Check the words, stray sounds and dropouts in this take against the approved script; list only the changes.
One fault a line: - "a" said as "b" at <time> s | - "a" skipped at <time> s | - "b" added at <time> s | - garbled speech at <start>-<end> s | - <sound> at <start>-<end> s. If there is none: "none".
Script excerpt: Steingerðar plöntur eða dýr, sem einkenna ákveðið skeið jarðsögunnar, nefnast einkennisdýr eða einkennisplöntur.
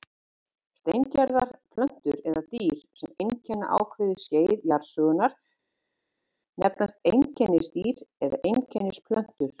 none